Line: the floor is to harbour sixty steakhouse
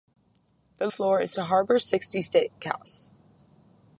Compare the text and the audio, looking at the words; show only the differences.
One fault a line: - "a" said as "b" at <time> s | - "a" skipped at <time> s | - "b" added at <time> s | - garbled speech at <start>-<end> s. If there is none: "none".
none